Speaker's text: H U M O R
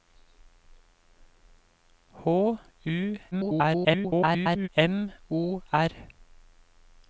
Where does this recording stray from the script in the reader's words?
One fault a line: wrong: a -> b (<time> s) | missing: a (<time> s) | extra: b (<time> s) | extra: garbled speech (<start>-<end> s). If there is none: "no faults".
extra: garbled speech (3.3-4.7 s)